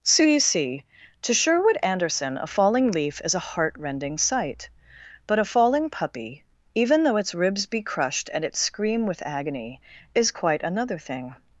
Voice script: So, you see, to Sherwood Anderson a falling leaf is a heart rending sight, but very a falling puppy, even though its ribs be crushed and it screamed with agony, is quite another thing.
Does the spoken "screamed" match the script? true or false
false